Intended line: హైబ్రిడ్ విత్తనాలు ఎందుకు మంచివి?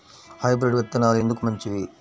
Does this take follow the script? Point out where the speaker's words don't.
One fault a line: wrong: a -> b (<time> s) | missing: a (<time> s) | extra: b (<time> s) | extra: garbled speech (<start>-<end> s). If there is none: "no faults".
no faults